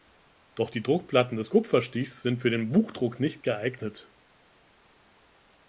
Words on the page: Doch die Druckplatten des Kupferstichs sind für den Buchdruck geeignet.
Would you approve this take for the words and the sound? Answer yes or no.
no